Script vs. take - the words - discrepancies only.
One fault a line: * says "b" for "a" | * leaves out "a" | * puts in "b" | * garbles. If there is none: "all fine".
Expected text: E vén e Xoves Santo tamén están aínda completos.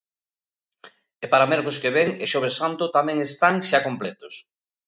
* puts in "para mércores que"
* says "xa" for "aínda"